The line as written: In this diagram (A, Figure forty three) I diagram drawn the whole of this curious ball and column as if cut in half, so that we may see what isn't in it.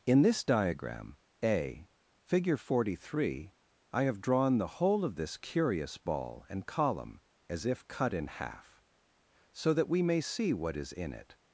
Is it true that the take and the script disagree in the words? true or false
true